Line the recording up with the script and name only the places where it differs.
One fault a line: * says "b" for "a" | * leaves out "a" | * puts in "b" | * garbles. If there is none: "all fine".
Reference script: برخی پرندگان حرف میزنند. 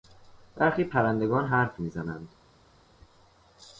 all fine